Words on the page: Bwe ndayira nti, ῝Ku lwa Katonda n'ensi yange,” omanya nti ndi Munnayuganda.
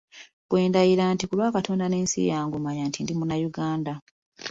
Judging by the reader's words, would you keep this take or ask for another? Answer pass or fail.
pass